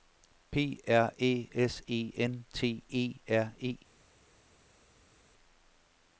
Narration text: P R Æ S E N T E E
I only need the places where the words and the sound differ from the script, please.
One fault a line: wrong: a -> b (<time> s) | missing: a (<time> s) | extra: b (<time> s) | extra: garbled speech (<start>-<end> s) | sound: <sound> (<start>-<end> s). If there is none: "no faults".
extra: R (3.3 s)